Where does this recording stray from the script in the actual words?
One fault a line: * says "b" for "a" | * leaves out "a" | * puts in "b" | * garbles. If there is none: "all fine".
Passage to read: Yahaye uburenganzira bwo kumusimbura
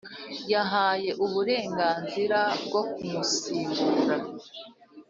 all fine